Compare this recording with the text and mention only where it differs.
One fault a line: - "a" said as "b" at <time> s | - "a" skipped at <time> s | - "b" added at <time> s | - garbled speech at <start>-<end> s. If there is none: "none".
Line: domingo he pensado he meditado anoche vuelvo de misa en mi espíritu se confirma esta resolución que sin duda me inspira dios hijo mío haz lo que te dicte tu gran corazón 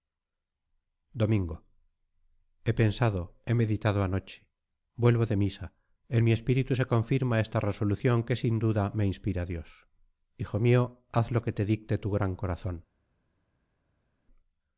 none